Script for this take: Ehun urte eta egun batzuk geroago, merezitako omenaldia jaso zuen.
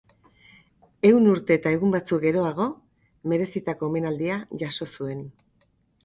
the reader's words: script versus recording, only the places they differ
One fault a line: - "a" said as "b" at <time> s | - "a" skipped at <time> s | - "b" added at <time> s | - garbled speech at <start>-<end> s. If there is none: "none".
none